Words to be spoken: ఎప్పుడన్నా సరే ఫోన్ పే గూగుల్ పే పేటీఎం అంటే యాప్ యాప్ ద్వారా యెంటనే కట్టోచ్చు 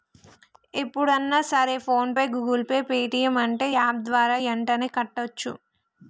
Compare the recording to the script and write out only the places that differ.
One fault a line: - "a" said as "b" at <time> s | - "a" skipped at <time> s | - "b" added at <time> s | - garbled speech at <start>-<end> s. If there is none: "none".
- "యాప్" skipped at 4.0 s